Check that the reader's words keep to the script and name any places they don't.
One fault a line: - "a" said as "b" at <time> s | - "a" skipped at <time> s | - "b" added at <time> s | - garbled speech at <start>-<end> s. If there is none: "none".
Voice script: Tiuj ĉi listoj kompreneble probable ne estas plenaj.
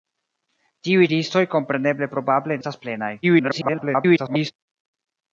- "ĉi" skipped at 1.1 s
- "ne" skipped at 2.6 s
- garbled speech at 3.2-4.5 s